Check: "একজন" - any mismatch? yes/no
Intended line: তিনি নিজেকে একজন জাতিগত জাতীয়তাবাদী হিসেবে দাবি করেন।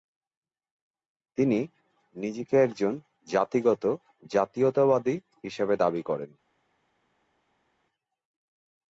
no